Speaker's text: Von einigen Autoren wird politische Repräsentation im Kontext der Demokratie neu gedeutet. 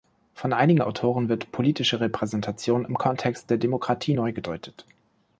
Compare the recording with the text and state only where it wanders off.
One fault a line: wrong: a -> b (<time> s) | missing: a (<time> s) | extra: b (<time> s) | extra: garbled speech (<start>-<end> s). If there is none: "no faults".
no faults